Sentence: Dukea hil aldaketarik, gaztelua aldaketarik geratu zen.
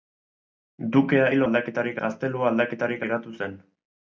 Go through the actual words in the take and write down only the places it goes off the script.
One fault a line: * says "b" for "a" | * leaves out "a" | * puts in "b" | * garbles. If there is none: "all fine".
all fine